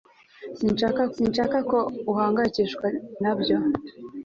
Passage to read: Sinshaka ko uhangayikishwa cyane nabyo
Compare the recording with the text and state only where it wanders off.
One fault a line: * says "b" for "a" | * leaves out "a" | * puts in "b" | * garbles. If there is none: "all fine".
* puts in "sinshaka"
* leaves out "cyane"